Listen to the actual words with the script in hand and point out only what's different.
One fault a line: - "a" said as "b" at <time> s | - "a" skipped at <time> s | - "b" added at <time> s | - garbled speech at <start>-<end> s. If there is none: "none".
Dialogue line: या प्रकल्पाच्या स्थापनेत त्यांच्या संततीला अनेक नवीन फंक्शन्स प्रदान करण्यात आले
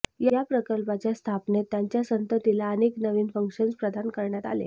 none